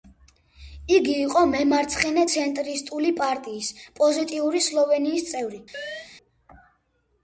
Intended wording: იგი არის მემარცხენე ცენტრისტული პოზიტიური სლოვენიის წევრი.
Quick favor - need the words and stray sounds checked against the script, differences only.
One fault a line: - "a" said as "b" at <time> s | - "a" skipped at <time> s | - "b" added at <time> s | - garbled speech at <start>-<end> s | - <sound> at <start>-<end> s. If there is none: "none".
- "არის" said as "იყო" at 1.2 s
- "პარტიის" added at 3.2 s
- chirp at 5.7-6.1 s